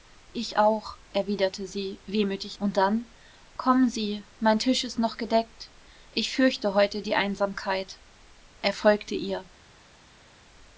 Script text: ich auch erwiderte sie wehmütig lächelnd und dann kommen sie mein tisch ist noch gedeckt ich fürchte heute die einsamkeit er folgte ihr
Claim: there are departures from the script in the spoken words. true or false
true